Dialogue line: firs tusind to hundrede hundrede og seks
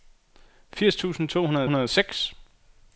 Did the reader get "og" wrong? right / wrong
right